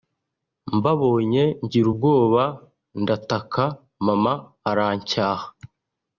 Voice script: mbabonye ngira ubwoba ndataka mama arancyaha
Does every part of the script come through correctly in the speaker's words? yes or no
yes